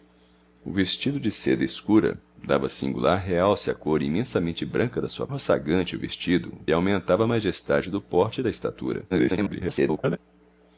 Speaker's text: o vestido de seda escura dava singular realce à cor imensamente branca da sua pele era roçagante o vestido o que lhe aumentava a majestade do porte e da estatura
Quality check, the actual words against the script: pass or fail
fail